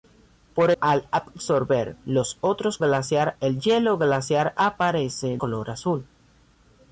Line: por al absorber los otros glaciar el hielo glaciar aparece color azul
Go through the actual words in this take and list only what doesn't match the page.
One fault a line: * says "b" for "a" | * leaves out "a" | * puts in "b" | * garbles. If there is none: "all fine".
all fine